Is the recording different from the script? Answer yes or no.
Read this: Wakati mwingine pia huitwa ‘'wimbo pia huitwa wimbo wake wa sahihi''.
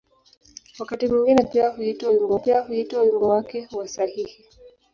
no